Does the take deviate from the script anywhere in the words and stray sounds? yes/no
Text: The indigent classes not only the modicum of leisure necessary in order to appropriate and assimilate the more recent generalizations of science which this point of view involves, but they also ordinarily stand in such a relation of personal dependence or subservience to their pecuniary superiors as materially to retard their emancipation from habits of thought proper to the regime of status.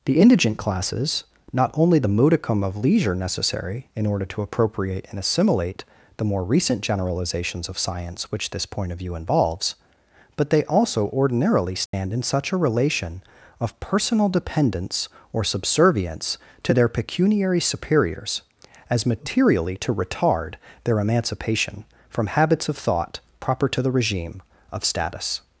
yes